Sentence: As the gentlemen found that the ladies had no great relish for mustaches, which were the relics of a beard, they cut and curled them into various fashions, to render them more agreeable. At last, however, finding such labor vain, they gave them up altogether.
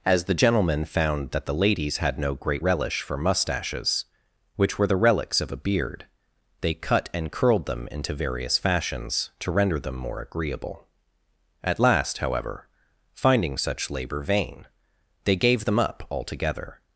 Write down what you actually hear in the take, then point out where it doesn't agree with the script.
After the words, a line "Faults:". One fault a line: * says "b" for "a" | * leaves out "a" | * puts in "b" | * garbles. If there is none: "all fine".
As the gentlemen found that the ladies had no great relish for mustaches, which were the relics of a beard, they cut and curled them into various fashions, to render them more agreeable. At last, however, finding such labor vain, they gave them up altogether.
Faults:
all fine